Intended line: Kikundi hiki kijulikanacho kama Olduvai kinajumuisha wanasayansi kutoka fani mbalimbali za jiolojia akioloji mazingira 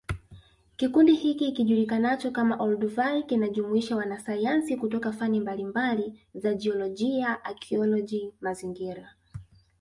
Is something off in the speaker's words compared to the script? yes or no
no